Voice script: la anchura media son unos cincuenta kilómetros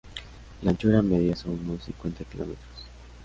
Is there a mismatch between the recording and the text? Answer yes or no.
no